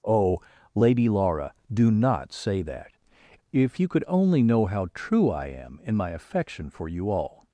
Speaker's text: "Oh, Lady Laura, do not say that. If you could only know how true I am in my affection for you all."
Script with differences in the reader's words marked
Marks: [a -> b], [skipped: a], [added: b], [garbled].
"Oh, Lady Laura, do not say that. If you could only know how true I am in my affection for you all."